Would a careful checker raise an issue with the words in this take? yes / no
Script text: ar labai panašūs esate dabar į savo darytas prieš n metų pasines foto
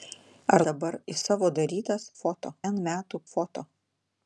yes